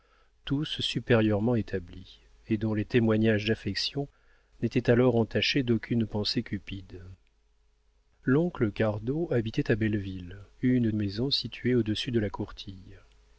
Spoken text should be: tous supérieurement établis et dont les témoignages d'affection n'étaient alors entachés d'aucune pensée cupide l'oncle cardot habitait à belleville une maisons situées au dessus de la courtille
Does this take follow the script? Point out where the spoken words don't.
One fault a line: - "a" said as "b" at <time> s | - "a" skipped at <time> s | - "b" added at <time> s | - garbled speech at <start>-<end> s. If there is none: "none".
none